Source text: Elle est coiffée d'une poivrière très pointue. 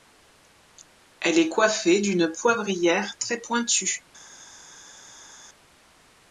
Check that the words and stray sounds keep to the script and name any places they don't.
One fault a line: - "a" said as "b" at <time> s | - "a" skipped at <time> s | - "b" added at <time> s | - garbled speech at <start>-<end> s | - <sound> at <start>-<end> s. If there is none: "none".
none